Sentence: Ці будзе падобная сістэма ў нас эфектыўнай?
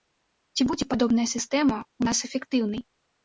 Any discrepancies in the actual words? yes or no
no